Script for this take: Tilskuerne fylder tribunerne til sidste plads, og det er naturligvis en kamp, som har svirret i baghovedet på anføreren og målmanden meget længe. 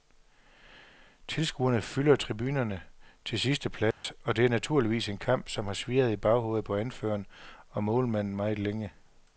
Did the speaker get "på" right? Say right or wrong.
right